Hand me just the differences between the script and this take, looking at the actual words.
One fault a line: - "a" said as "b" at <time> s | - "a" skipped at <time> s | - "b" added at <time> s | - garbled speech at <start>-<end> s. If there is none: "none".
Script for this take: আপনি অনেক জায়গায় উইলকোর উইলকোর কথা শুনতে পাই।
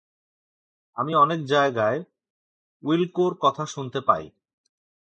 - "আপনি" said as "আমি" at 1.0 s
- "উইলকোর" skipped at 3.3 s